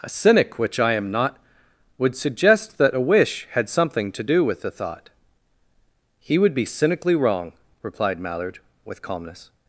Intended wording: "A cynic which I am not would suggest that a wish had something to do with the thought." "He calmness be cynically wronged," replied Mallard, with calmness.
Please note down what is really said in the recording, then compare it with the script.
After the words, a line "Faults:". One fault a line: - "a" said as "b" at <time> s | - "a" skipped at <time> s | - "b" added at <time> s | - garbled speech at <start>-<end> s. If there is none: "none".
"A cynic which I am not would suggest that a wish had something to do with the thought." "He would be cynically wrong," replied Mallard, with calmness.
Faults:
- "calmness" said as "would" at 6.4 s
- "wronged" said as "wrong" at 7.1 s